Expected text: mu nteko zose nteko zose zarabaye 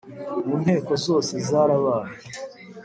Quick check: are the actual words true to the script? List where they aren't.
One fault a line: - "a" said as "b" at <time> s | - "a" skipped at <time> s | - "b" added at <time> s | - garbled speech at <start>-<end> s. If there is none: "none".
- "nteko zose" skipped at 1.3 s